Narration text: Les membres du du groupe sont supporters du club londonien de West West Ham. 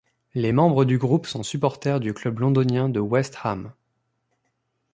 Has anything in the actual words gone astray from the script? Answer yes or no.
yes